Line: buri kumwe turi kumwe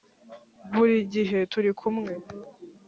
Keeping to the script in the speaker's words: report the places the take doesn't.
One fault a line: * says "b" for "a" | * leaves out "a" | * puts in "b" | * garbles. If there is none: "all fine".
* says "gihe" for "kumwe"